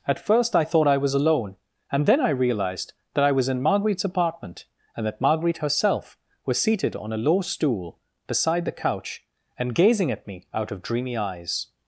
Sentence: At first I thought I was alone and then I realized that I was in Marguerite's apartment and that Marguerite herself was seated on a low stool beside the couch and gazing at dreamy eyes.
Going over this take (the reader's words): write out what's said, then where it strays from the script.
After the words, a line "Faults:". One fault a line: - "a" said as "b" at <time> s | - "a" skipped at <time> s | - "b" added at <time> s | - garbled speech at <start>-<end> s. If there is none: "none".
At first I thought I was alone and then I realized that I was in Marguerite's apartment and that Marguerite herself was seated on a low stool beside the couch and gazing at me out of dreamy eyes.
Faults:
- "me out of" added at 10.3 s